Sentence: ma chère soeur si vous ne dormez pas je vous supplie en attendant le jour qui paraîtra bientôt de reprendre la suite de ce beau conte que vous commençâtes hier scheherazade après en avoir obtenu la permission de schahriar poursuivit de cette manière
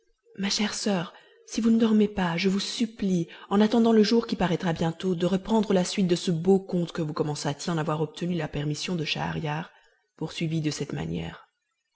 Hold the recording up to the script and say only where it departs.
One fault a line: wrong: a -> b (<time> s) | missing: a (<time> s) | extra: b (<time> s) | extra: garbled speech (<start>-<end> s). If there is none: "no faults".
missing: hier scheherazade après (7.7 s)